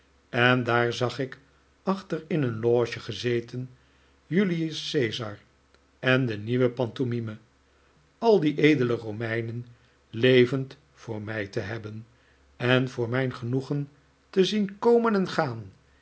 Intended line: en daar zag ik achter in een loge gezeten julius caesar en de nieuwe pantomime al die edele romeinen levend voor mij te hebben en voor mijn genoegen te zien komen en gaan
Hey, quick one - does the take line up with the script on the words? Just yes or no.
yes